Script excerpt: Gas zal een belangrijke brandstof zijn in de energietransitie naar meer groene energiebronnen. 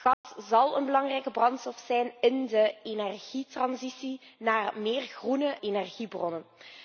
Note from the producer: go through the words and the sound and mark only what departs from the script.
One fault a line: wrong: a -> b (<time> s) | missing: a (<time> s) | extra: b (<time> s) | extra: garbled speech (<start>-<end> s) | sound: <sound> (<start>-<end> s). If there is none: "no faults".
sound: dropout (0.1-0.2 s)